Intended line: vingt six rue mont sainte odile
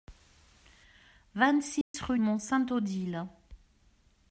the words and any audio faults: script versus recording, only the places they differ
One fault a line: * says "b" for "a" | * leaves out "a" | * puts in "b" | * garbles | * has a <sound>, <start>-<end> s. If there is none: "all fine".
* has a dropout, 1.8-1.9 s